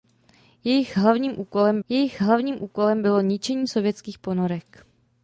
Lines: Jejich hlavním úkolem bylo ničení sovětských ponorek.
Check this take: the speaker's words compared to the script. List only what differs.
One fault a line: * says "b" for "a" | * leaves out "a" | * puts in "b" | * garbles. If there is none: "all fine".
* puts in "jejich hlavním úkolem"